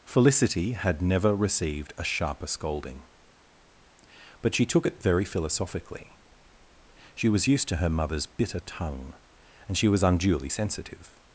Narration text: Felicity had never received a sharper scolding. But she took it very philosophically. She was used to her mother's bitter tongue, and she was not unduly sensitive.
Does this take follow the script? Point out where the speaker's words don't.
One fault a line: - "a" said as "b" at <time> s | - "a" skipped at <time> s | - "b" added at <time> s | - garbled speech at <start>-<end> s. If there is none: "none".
- "not" skipped at 10.0 s